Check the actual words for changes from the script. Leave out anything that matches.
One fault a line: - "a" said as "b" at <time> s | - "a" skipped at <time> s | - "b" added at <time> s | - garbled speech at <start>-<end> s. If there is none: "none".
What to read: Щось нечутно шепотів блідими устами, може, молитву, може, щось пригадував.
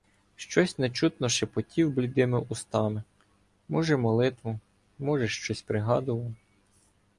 none